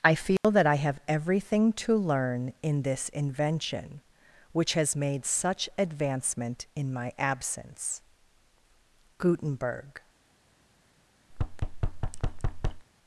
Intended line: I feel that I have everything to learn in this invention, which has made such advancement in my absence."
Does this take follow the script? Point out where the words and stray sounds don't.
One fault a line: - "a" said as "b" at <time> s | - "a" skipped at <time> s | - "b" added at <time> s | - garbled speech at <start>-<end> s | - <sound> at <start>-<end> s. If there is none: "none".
- dropout at 0.4-0.4 s
- "Gutenberg" added at 9.2 s
- thud at 11.3-12.9 s